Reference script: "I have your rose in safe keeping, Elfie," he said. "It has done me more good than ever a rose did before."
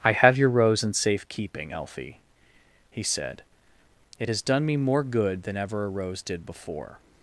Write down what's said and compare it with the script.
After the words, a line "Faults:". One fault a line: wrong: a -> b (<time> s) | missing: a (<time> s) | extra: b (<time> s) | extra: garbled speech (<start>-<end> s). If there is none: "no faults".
"I have your rose in safe keeping, Elfie," he said. "It has done me more good than ever a rose did before."
Faults:
no faults